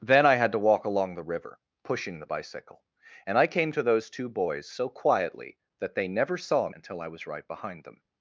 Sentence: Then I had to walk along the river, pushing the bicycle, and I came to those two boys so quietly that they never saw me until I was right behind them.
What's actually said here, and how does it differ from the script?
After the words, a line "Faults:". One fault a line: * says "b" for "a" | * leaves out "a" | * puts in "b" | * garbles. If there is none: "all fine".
Then I had to walk along the river, pushing the bicycle, and I came to those two boys so quietly that they never saw until I was right behind them.
Faults:
* leaves out "me"